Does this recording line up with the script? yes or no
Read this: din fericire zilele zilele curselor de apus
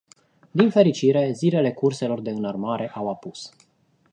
no